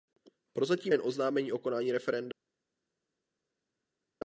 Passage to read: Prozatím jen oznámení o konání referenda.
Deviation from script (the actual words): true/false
false